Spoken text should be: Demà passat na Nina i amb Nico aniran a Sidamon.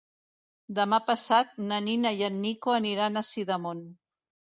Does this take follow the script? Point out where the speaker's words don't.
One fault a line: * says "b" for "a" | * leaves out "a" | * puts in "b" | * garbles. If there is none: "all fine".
* says "en" for "amb"